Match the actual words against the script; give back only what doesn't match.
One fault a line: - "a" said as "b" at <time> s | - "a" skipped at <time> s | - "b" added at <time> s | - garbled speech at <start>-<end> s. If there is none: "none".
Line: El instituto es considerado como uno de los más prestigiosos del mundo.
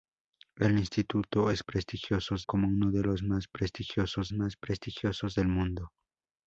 - "considerado" said as "prestigiosos" at 1.6 s
- "más prestigiosos" added at 4.3 s